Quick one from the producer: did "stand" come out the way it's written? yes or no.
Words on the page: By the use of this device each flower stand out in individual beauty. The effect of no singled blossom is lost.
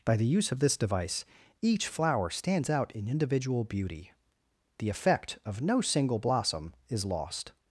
no